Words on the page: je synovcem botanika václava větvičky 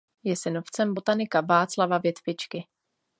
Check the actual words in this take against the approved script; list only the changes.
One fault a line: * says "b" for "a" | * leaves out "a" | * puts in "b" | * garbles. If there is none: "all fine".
all fine